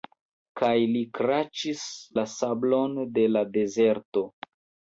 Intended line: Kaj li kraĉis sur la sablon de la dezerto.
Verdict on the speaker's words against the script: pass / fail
fail